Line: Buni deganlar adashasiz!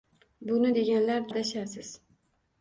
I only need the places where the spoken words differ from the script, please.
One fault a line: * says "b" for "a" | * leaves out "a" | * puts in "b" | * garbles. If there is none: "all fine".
all fine